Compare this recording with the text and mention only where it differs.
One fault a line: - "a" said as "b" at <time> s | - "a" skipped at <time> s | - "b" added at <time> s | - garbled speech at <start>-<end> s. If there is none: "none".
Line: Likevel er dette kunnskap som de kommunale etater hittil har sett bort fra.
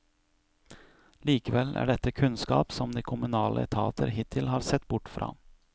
none